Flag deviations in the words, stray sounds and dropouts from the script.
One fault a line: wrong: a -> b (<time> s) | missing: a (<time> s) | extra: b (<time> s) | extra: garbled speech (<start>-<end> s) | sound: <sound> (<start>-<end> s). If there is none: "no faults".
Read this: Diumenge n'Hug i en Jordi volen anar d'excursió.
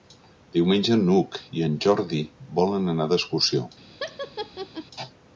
sound: laugh (4.0-4.9 s)